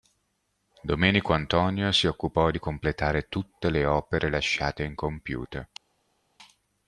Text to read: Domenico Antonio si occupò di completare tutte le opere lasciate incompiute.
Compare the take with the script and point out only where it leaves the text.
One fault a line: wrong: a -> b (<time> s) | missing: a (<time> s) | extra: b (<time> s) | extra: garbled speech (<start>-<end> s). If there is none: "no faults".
no faults